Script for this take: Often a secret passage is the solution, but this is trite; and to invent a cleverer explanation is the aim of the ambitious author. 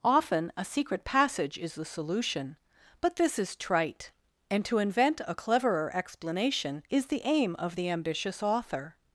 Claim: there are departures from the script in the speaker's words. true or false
false